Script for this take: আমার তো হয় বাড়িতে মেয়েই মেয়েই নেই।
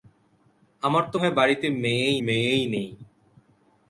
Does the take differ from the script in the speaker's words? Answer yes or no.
no